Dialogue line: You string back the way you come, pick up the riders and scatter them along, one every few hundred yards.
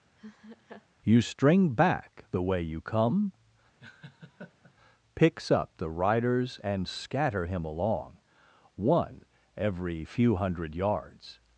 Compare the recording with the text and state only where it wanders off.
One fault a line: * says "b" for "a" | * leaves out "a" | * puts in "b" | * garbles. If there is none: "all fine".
* says "picks" for "pick"
* says "him" for "them"